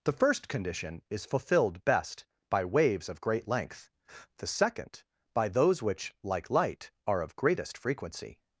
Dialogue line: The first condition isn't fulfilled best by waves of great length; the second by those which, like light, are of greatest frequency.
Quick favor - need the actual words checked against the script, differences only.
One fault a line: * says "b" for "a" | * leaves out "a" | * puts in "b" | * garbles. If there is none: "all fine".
* says "is" for "isn't"